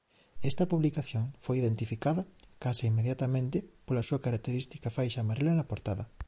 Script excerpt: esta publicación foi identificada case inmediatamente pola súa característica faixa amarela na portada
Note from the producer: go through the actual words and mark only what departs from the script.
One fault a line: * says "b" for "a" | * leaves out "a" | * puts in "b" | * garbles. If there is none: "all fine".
all fine